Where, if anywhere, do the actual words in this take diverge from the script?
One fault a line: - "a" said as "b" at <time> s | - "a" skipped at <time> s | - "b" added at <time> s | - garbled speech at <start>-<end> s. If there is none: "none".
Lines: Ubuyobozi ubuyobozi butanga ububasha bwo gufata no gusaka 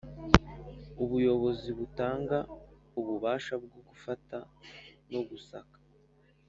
- "ubuyobozi" skipped at 1.7 s